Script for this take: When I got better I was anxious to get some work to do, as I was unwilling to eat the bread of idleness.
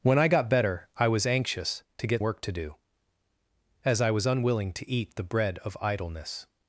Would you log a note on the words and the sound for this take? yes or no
yes